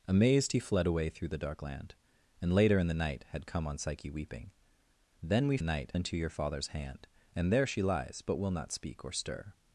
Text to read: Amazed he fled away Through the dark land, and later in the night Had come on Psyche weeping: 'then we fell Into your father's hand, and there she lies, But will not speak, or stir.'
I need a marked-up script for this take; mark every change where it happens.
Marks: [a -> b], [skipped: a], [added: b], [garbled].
Amazed he fled away Through the dark land, and later in the night Had come on Psyche weeping: 'then we [fell -> night] Into your father's hand, and there she lies, But will not speak, or stir.'